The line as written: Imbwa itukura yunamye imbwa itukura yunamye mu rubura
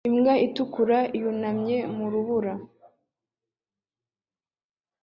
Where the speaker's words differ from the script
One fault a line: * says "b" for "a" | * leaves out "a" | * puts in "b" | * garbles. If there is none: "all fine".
* leaves out "imbwa itukura yunamye"